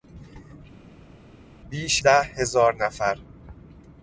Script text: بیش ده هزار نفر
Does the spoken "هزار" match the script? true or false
true